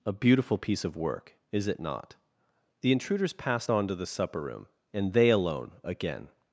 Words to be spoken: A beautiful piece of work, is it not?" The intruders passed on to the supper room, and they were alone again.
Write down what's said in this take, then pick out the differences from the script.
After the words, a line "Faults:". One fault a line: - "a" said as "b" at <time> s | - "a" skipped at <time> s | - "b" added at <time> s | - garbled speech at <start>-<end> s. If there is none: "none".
A beautiful piece of work, is it not?" The intruders passed on to the supper room, and they alone again.
Faults:
- "were" skipped at 5.3 s